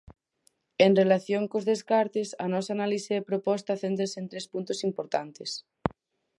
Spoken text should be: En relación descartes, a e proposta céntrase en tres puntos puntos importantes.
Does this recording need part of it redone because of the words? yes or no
yes